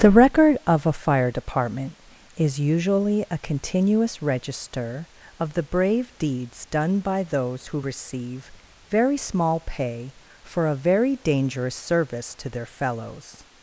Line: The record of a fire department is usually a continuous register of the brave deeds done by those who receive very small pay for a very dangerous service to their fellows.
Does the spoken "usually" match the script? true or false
true